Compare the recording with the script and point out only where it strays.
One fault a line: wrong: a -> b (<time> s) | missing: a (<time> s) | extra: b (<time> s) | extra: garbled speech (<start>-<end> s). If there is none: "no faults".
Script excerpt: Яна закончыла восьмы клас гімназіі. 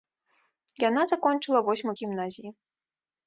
missing: клас (1.9 s)